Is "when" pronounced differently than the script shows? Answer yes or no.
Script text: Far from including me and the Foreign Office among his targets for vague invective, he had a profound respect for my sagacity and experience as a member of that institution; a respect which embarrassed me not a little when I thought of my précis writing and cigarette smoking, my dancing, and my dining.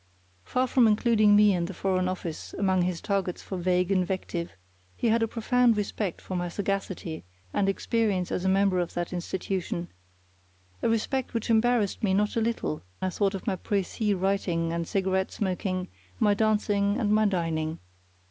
yes